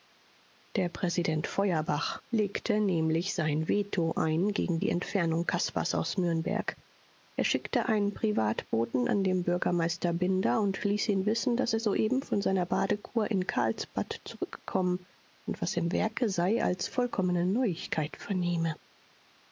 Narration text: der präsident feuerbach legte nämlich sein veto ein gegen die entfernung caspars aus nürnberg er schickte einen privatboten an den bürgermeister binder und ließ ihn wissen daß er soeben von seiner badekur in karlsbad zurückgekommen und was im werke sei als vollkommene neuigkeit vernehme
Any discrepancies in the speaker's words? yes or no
no